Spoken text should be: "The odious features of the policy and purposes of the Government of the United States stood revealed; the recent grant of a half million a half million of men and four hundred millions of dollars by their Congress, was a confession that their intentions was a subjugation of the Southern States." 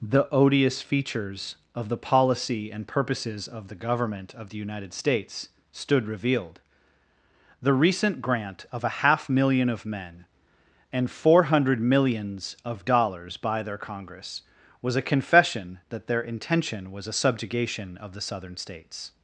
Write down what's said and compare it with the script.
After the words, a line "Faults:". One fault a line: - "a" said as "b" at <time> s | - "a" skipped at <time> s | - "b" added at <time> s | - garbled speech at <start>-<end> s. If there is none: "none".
"The odious features of the policy and purposes of the Government of the United States stood revealed; the recent grant of a half million of men and four hundred millions of dollars by their Congress, was a confession that their intention was a subjugation of the Southern States."
Faults:
- "a half million" skipped at 9.7 s
- "intentions" said as "intention" at 16.2 s